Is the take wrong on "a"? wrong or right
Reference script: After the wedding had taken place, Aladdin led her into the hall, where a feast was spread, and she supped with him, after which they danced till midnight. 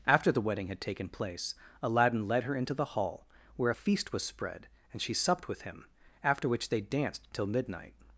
right